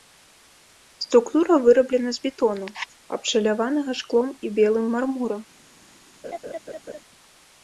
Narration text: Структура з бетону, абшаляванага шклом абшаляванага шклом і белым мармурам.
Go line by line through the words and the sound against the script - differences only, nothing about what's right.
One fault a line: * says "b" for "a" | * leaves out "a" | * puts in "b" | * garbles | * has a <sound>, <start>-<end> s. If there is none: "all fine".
* puts in "выраблена"
* leaves out "абшаляванага шклом"
* has a laugh, 6.2-7.0 s